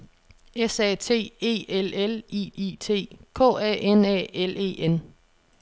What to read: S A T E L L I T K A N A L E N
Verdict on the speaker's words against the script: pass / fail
fail